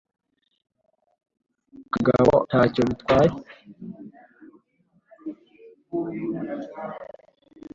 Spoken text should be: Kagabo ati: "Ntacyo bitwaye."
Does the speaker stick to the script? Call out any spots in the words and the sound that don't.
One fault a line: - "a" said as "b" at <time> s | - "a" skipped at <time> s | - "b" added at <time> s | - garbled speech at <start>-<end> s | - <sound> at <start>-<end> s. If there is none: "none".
- "ati" skipped at 2.4 s